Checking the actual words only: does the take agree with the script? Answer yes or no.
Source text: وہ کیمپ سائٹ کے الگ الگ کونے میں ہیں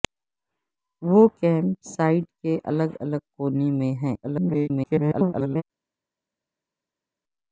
no